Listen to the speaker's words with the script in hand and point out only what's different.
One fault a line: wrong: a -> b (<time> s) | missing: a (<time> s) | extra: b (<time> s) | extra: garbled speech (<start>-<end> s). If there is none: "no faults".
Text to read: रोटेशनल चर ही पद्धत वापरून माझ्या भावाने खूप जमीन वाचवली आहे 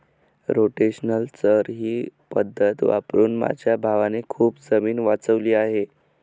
no faults